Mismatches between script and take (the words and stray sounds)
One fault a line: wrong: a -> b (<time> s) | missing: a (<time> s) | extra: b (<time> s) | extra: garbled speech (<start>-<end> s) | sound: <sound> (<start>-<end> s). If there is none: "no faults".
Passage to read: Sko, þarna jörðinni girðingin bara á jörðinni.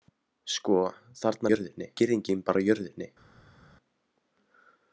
no faults